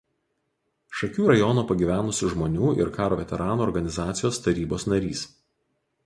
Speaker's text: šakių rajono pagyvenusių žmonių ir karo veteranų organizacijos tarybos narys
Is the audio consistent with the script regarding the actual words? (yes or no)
yes